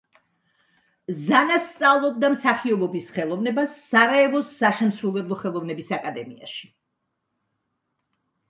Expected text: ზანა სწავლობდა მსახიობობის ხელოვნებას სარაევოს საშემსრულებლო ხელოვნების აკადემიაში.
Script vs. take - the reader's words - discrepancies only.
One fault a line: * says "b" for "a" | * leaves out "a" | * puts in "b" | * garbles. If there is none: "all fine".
all fine